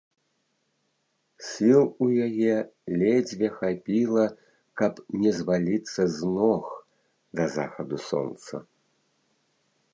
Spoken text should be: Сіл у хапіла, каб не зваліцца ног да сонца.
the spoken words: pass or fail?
fail